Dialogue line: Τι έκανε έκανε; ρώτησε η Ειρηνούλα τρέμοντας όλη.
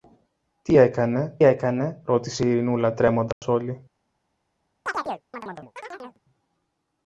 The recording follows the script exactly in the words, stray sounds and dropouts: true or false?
false